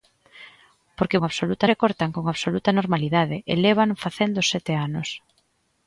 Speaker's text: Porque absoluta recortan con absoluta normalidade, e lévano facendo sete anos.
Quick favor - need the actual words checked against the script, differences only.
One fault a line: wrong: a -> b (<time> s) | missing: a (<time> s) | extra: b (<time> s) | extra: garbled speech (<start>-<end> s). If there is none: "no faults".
no faults